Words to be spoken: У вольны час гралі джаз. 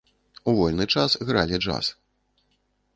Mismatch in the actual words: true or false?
false